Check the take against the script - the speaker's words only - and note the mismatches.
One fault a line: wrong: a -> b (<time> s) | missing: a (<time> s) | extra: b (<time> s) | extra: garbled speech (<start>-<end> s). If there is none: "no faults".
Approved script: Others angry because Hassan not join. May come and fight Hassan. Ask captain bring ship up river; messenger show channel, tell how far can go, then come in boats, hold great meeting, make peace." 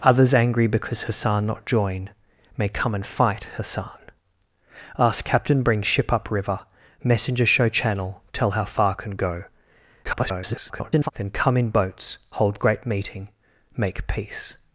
extra: garbled speech (10.0-11.1 s)